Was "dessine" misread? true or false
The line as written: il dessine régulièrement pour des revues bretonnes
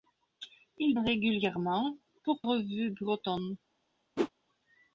true